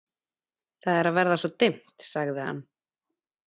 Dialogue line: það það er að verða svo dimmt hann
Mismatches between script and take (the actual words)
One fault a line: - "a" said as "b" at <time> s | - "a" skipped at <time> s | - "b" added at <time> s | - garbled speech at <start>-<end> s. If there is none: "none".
- "það" skipped at 1.0 s
- "sagði" added at 2.1 s